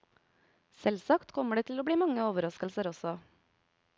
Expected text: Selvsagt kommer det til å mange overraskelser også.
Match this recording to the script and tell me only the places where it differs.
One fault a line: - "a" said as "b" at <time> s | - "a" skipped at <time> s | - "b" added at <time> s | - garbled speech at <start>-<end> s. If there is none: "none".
- "bli" added at 1.8 s